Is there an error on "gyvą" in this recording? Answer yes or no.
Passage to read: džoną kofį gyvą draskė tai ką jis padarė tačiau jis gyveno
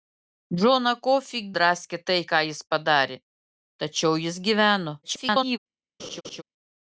yes